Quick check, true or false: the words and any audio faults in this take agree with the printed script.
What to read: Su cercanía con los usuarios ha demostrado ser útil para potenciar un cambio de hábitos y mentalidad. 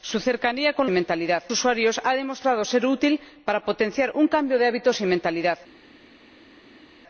false